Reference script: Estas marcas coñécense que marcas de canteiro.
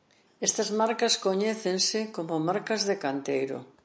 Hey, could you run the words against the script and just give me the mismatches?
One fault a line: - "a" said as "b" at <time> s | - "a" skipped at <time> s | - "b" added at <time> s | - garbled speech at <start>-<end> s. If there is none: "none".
- "que" said as "como" at 2.2 s